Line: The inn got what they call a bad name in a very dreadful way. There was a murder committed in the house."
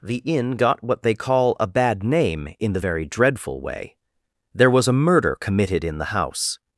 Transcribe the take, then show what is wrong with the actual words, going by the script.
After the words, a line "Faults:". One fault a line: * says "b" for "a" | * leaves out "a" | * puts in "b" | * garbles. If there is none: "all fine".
The inn got what they call a bad name in the very dreadful way. There was a murder committed in the house."
Faults:
* says "the" for "a"